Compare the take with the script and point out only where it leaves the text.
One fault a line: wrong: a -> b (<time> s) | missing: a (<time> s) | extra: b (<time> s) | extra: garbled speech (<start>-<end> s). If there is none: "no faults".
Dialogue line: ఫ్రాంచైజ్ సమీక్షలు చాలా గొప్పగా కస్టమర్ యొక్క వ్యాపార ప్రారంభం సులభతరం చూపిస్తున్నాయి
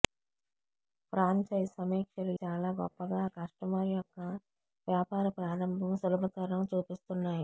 no faults